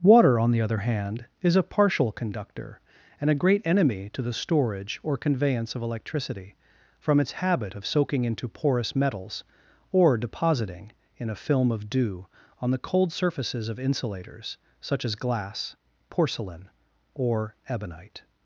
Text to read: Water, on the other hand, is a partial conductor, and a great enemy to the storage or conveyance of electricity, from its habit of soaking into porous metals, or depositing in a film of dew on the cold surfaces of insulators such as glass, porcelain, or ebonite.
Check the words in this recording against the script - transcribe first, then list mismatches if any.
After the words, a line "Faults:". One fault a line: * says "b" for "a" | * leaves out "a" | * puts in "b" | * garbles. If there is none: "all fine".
Water, on the other hand, is a partial conductor, and a great enemy to the storage or conveyance of electricity, from its habit of soaking into porous metals, or depositing in a film of dew on the cold surfaces of insulators such as glass, porcelain, or ebonite.
Faults:
all fine